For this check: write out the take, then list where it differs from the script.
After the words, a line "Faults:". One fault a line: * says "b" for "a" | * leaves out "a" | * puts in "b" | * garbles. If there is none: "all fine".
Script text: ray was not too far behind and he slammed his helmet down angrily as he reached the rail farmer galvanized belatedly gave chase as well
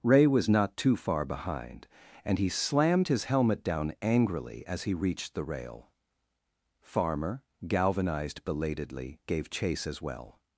ray was not too far behind and he slammed his helmet down angrily as he reached the rail farmer galvanized belatedly gave chase as well
Faults:
all fine